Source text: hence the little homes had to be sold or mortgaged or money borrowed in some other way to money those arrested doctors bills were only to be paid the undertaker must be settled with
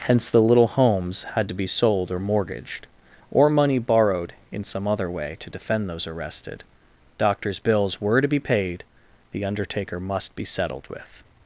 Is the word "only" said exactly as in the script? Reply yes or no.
no